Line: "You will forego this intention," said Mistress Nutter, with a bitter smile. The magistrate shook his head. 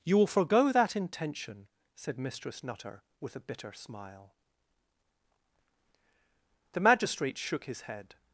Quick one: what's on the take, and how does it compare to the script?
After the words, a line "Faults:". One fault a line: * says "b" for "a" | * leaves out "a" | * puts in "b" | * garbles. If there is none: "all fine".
"You will forego that intention," said Mistress Nutter, with a bitter smile. The magistrate shook his head.
Faults:
* says "that" for "this"